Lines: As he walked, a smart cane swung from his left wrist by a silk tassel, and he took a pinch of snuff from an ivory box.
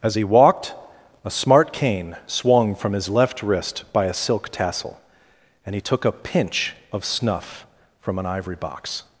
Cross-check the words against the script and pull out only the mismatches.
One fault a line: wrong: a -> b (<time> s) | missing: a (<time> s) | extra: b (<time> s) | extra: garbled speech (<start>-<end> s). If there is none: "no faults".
no faults